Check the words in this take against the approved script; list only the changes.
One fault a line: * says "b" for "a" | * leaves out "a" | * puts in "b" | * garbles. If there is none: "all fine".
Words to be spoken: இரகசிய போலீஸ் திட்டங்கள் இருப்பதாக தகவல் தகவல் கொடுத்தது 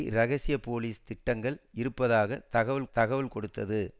all fine